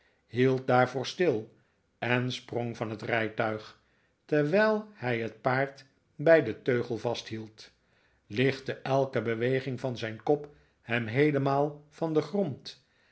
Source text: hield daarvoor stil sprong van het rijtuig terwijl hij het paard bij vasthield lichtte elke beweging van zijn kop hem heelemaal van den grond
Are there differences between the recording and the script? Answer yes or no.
yes